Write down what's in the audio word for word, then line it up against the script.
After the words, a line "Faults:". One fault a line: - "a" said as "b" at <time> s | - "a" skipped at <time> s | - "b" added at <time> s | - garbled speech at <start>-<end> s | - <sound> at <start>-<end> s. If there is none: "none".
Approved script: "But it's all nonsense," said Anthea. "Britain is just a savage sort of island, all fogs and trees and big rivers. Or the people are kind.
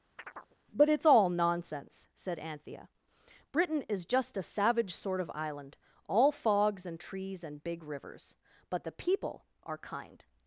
"But it's all nonsense," said Anthea. "Britain is just a savage sort of island, all fogs and trees and big rivers. But the people are kind.
Faults:
- chirp at 0.2-0.6 s
- "Or" said as "But" at 8.7 s